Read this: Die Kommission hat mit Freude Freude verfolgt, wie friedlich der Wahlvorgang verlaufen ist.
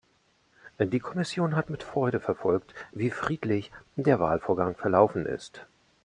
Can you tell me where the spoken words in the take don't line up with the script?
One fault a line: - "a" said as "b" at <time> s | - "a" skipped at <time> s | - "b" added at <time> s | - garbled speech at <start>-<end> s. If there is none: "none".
- "Freude" skipped at 2.2 s